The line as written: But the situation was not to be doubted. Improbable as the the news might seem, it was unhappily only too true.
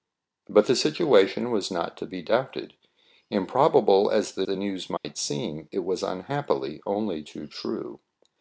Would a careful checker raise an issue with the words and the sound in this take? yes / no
yes